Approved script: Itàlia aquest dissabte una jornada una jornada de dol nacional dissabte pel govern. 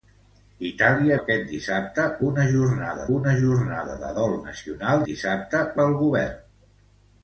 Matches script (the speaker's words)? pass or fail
pass